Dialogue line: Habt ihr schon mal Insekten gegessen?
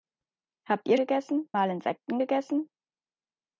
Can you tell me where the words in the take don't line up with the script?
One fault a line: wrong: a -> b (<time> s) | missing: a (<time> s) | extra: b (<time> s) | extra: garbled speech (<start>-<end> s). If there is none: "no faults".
wrong: schon -> gegessen (1.0 s)